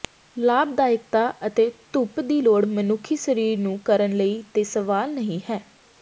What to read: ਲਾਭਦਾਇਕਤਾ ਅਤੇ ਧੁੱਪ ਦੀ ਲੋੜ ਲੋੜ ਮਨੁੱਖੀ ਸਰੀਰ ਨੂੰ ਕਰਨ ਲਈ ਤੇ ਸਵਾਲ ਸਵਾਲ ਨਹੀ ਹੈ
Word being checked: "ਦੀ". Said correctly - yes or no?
yes